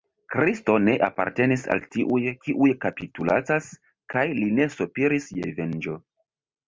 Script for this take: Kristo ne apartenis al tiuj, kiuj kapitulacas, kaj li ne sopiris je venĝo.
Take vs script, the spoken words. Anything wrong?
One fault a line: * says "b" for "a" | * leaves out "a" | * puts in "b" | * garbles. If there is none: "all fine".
all fine